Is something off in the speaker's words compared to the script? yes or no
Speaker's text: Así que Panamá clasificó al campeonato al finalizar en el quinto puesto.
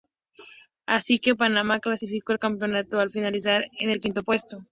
no